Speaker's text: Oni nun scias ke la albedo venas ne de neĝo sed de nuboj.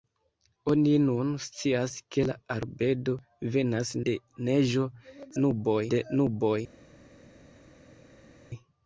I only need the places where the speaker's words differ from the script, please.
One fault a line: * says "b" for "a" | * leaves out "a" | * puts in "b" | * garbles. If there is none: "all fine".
* leaves out "ne"
* says "nuboj" for "sed"